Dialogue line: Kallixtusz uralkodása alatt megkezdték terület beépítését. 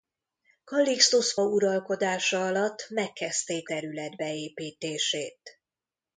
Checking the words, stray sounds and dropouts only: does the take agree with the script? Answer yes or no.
yes